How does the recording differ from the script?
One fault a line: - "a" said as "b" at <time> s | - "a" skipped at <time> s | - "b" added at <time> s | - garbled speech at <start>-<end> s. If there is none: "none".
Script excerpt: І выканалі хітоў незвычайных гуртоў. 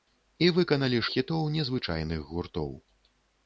none